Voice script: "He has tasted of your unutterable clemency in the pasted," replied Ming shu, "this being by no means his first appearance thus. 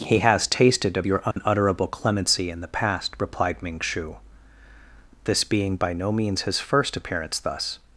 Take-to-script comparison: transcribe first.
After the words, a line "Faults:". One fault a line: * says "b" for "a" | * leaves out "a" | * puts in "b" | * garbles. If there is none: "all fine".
"He has tasted of your unutterable clemency in the past," replied Ming shu, "this being by no means his first appearance thus.
Faults:
* says "past" for "pasted"